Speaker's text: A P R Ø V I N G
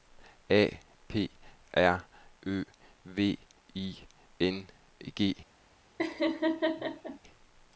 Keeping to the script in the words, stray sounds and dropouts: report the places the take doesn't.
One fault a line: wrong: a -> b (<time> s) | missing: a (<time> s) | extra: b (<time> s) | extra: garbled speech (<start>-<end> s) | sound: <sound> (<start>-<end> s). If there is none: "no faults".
sound: laugh (6.0-7.2 s)